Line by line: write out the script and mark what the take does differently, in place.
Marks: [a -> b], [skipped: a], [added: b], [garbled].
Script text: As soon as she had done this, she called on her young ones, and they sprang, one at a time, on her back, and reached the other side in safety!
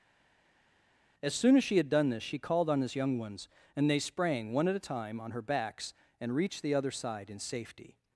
As soon as she had done this, she called on [her -> his] young ones, and they sprang, one at a time, on her [back, -> backs] and reached the other side in safety!